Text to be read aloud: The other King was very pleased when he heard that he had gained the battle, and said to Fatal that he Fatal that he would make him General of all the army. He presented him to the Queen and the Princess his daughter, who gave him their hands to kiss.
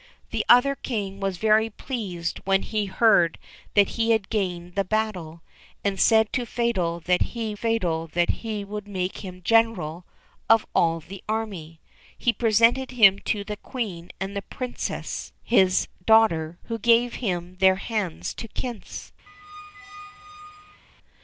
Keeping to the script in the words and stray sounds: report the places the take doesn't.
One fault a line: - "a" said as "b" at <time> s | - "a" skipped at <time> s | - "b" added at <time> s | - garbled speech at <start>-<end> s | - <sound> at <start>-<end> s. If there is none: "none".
- squeak at 19.3-20.8 s